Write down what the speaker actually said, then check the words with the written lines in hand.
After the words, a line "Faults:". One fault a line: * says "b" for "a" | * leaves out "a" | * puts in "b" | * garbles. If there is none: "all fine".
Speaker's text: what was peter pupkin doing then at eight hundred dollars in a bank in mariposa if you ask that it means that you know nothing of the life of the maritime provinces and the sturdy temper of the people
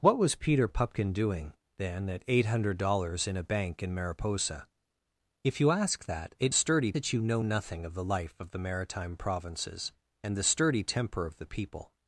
what was peter pupkin doing then at eight hundred dollars in a bank in mariposa if you ask that it sturdy that you know nothing of the life of the maritime provinces and the sturdy temper of the people
Faults:
* says "sturdy" for "means"